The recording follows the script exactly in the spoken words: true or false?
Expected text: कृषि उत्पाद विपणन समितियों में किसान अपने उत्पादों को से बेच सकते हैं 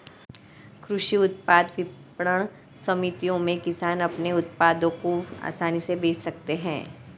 false